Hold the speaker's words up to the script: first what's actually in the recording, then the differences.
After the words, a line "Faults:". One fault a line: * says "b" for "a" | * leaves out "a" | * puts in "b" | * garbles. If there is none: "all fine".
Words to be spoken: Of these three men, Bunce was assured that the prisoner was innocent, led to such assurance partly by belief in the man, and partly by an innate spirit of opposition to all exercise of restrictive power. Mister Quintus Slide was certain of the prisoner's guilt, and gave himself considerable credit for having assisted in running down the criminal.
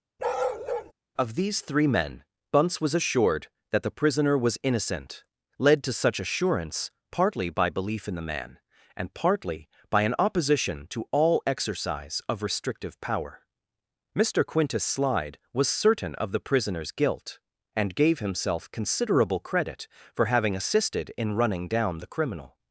Of these three men, Bunce was assured that the prisoner was innocent, led to such assurance partly by belief in the man, and partly by an opposition to all exercise of restrictive power. Mister Quintus Slide was certain of the prisoner's guilt, and gave himself considerable credit for having assisted in running down the criminal.
Faults:
* leaves out "innate spirit of"